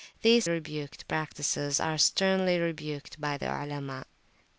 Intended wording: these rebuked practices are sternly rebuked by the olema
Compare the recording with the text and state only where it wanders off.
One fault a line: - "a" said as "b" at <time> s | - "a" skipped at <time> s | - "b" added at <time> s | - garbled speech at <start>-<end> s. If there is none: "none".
none